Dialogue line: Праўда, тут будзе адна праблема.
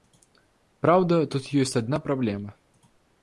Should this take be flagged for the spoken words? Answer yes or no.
yes